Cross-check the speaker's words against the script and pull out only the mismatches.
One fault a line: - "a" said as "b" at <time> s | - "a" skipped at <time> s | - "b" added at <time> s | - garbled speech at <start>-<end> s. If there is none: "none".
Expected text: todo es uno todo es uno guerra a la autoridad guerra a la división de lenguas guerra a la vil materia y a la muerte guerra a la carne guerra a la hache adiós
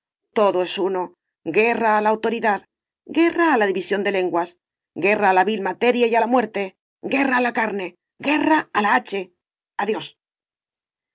- "todo es uno" skipped at 1.1 s